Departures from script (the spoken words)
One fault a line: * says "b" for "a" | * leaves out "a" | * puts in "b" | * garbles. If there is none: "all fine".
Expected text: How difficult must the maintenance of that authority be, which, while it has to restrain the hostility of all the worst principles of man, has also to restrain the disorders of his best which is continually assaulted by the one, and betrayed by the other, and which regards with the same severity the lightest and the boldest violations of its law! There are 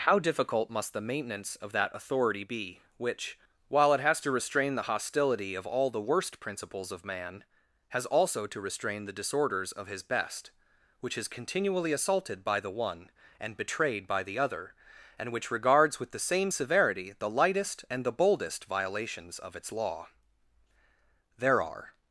all fine